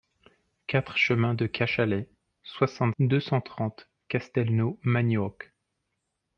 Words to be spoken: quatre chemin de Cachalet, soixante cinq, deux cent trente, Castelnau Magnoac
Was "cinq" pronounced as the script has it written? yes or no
no